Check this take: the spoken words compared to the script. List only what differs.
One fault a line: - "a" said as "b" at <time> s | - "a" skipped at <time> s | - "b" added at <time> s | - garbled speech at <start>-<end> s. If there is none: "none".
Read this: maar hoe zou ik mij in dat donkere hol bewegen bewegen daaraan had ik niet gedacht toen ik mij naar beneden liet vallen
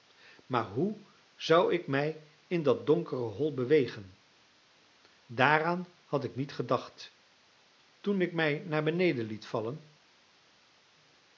- "bewegen" skipped at 4.2 s